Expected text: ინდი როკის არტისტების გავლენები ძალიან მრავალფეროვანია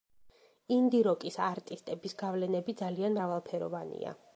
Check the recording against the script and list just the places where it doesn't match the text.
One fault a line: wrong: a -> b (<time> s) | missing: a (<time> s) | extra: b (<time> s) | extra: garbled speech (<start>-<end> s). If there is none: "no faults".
no faults